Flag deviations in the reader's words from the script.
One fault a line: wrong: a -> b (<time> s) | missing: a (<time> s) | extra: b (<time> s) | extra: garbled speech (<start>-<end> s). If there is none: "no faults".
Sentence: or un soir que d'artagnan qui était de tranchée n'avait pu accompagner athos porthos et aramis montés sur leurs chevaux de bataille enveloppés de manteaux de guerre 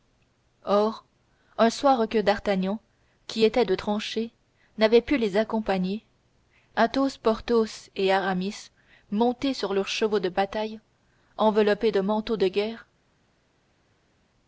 extra: les (5.2 s)